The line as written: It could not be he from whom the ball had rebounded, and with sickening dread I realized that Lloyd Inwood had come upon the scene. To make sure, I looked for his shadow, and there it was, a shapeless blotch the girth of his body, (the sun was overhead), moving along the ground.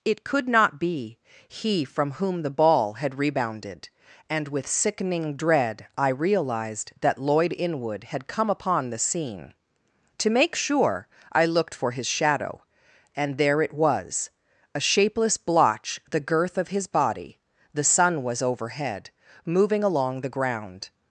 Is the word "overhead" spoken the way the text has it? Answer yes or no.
yes